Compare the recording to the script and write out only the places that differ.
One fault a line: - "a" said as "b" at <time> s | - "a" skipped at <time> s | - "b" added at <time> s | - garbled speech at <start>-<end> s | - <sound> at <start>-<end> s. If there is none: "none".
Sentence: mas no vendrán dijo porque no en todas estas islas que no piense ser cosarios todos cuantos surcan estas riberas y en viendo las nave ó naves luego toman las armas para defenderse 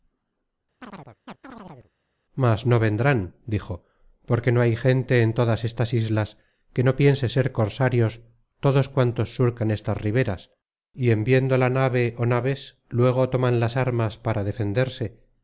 - chirp at 0.8-1.9 s
- "hay gente" added at 4.6 s
- "las" said as "la" at 11.6 s